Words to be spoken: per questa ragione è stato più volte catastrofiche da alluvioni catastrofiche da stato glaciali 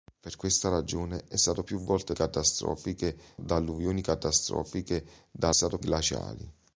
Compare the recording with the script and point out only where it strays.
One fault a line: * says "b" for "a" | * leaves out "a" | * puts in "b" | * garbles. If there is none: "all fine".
all fine